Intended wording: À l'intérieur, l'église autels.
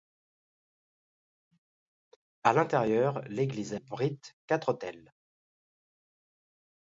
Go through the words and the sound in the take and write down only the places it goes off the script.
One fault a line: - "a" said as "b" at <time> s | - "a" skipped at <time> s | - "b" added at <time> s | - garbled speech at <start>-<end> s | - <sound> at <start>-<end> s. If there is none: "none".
- "abrite quatre" added at 3.7 s